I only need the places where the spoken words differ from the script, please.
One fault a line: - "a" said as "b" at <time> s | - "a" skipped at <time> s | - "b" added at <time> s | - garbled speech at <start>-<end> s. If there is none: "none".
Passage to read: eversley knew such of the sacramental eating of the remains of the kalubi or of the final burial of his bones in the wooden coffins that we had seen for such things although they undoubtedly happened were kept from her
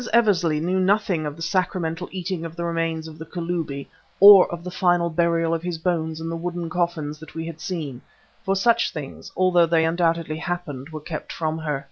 - "such" said as "nothing" at 0.8 s